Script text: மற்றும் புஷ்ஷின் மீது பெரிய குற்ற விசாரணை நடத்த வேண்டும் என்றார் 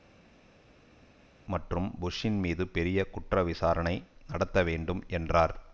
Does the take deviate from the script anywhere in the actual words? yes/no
no